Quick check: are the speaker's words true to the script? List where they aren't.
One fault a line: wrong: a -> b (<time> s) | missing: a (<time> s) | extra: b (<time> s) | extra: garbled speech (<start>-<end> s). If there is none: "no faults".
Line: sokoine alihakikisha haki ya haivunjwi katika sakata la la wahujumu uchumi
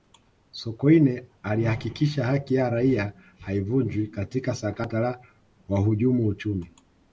extra: raia (2.7 s)
missing: la (5.2 s)